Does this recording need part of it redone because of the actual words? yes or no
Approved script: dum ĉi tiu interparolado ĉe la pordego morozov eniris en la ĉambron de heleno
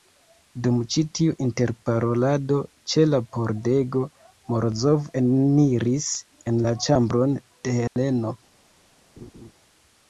no